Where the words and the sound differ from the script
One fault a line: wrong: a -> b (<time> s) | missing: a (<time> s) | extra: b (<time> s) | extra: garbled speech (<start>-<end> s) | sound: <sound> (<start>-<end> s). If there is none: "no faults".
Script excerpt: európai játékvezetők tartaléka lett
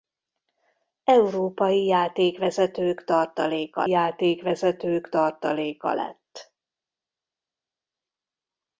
extra: játékvezetők tartaléka (3.9 s)